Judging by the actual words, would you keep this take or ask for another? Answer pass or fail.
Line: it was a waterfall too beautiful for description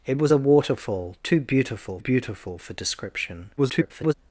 fail